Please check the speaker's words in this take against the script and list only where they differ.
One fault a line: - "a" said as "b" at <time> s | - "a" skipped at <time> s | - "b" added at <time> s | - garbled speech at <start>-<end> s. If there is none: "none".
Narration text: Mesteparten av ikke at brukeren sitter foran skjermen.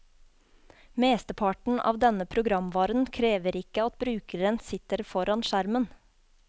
- "denne programvaren krever" added at 2.0 s